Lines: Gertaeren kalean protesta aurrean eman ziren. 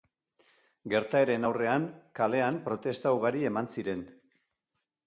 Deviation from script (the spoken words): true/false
true